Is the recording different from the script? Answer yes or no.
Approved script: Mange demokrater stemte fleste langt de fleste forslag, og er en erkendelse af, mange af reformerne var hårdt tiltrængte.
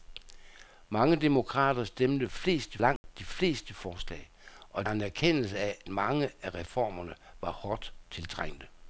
no